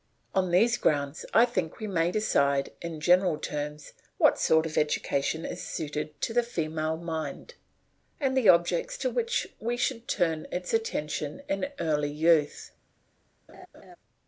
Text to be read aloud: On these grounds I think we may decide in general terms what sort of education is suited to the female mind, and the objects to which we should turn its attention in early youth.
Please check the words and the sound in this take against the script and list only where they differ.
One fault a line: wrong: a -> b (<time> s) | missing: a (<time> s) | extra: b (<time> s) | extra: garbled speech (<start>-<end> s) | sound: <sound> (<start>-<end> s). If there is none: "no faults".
sound: laugh (13.5-14.0 s)